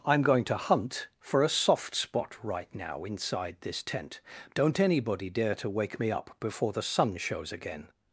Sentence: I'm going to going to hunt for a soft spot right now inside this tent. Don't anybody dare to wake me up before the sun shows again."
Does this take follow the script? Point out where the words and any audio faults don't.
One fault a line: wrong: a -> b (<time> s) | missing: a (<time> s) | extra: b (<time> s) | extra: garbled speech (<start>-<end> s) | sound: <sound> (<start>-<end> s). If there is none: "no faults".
missing: going to (0.6 s)